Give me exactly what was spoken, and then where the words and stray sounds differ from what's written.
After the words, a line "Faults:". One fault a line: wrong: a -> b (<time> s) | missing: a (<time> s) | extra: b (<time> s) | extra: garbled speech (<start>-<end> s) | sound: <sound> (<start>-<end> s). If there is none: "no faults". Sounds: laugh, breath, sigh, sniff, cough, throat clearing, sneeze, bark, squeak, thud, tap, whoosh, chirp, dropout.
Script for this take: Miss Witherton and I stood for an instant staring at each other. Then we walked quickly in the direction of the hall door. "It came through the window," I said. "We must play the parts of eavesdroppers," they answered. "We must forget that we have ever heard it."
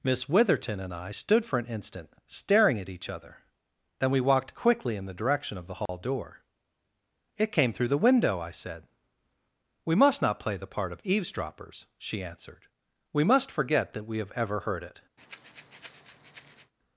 Miss Witherton and I stood for an instant staring at each other. Then we walked quickly in the direction of the hall door. "It came through the window," I said. "We must not play the part of eavesdroppers," she answered. "We must forget that we have ever heard it."
Faults:
sound: dropout (5.9-5.9 s)
extra: not (10.2 s)
wrong: parts -> part (10.7 s)
wrong: they -> she (12.0 s)
sound: breath (15.2-16.7 s)